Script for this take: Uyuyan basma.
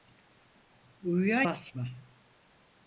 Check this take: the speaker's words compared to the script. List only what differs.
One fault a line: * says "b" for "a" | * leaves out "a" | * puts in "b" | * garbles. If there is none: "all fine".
all fine